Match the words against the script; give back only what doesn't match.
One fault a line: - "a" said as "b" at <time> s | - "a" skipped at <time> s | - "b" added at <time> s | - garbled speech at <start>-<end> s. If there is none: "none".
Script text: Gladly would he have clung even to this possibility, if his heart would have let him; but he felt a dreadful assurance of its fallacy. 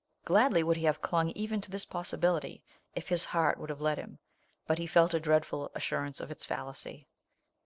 none